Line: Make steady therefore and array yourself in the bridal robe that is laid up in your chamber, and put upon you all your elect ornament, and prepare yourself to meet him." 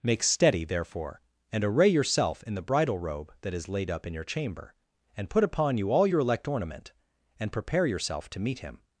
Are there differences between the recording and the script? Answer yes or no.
no